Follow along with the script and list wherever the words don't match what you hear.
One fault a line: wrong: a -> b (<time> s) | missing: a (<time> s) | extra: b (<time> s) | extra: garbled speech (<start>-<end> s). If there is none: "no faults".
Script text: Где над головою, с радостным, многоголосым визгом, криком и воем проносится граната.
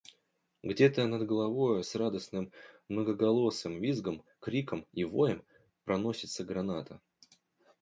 extra: то (0.9 s)